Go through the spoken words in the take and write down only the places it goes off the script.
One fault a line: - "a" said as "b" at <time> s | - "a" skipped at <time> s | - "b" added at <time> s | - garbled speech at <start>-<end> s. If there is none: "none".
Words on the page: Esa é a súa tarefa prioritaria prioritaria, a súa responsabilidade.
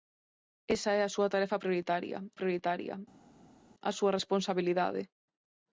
none